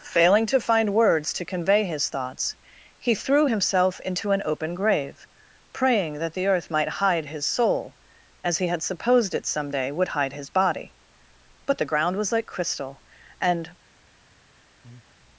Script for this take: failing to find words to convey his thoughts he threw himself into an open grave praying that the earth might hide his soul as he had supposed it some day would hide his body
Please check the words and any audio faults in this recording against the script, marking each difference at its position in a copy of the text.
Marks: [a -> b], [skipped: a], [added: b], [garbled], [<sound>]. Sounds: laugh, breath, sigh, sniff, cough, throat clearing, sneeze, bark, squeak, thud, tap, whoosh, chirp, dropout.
failing to find words to convey his thoughts he threw himself into an open grave praying that the earth might hide his soul as he had supposed it some day would hide his body [added: but the ground was like crystal and] [breath]